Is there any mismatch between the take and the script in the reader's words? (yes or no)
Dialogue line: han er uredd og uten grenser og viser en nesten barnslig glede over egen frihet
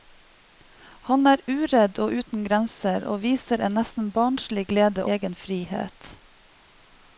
yes